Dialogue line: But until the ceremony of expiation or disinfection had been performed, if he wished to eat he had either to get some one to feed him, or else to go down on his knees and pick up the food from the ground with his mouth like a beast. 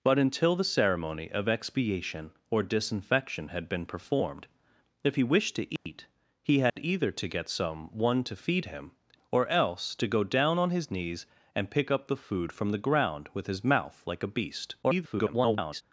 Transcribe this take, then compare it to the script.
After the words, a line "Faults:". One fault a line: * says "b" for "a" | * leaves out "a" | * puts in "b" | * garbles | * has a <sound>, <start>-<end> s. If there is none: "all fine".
But until the ceremony of expiation or disinfection had been performed, if he wished to eat he had either to get some one to feed him, or else to go down on his knees and pick up the food from the ground with his mouth like a beast. [garbled]
Faults:
* has a dropout, 5.8-5.9 s
* has a dropout, 6.7-6.8 s
* garbles